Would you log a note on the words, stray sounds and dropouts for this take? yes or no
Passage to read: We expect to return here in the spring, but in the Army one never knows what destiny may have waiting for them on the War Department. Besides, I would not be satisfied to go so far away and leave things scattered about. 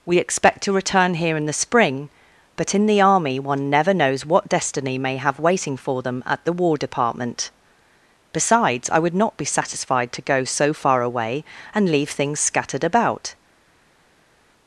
yes